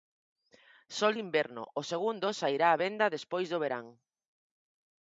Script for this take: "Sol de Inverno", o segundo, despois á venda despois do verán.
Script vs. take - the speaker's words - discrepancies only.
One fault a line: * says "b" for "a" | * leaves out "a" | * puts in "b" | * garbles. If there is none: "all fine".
* says "sairá" for "despois"